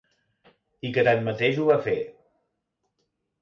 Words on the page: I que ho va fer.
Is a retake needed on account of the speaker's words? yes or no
yes